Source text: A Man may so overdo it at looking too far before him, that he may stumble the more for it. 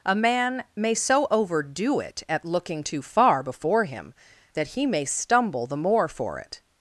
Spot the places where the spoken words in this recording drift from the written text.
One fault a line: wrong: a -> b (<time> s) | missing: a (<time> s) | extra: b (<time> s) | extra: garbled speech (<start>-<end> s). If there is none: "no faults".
no faults